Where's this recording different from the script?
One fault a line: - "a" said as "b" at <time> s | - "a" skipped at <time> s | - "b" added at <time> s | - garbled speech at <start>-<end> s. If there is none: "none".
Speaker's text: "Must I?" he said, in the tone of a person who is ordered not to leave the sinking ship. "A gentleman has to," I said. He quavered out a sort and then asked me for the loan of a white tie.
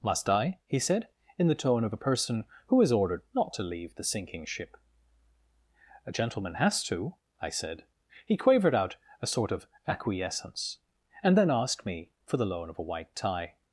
- "of acquiescence" added at 9.5 s